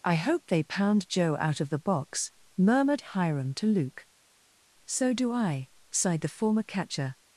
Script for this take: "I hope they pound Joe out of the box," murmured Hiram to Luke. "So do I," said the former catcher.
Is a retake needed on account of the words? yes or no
yes